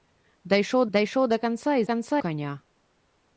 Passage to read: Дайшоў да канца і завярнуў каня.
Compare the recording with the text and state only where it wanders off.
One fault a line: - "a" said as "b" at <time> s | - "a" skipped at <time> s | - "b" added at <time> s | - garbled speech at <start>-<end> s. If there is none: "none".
- "дайшоў" added at 1.0 s
- "завярнуў" said as "канца" at 1.9 s